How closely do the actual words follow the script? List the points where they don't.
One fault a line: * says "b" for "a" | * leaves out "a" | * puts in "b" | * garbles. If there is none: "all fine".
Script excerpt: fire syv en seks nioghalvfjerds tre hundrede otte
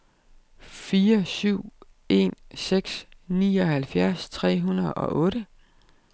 * puts in "og"